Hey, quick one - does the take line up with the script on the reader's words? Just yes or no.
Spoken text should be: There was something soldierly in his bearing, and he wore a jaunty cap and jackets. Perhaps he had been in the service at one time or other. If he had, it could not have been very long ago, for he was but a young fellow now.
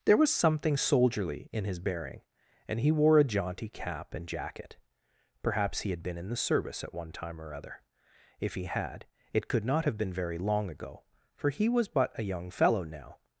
no